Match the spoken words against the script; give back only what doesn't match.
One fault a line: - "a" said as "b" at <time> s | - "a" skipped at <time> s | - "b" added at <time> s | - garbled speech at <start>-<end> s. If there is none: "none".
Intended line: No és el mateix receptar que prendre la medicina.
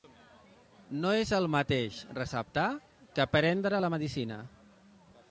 none